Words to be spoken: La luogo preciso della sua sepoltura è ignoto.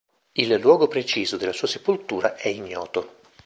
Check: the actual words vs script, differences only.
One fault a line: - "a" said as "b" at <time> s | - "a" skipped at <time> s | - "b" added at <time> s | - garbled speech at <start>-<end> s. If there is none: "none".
- "La" said as "Il" at 0.3 s